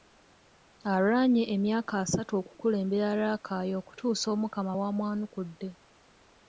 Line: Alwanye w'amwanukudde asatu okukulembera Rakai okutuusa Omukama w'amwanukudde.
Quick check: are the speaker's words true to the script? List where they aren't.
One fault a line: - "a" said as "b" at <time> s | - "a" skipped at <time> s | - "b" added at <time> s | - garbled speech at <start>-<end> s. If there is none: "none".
- "w'amwanukudde" said as "emyaka" at 1.6 s